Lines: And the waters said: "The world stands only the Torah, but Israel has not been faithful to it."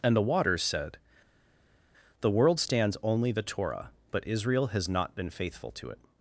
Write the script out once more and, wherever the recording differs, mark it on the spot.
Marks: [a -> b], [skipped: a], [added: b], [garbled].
And the waters said: "The world stands only the Torah, but Israel has not been faithful to it."